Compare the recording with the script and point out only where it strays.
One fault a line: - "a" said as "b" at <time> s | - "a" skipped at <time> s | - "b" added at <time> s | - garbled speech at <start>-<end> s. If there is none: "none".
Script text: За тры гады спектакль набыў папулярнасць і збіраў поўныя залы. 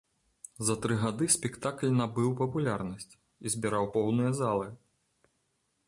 none